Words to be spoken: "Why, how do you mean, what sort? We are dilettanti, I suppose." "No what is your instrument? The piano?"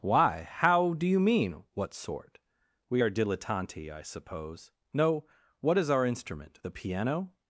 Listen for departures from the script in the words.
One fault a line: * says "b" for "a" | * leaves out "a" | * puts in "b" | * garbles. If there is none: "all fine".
* says "our" for "your"